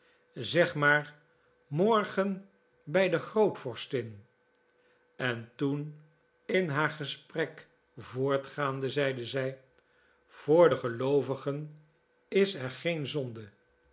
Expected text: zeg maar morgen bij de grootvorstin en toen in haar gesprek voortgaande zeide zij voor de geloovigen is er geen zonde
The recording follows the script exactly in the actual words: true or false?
true